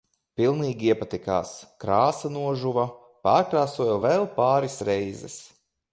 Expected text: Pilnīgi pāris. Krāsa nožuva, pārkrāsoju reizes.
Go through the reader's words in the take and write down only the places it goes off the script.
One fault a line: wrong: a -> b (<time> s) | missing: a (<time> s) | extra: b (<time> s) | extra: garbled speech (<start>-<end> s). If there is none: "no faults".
wrong: pāris -> iepatikās (0.9 s)
extra: vēl pāris (4.1 s)